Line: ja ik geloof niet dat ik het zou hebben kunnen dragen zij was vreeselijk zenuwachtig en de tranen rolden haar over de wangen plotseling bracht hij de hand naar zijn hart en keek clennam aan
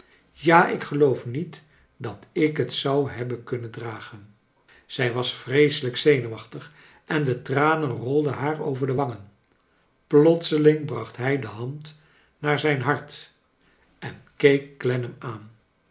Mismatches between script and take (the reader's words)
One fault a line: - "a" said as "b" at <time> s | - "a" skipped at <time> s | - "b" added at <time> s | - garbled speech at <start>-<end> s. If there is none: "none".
none